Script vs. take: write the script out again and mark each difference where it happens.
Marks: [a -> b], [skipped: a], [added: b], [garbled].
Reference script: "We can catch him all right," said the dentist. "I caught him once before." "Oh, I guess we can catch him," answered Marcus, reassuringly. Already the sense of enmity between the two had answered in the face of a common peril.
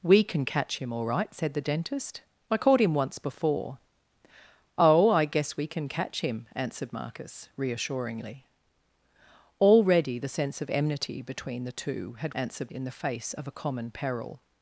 "We can catch him all right," said the dentist. "I caught him once before." "Oh, I guess we can catch him," answered Marcus, reassuringly. Already the sense of enmity between the two had answered in the face of a common peril.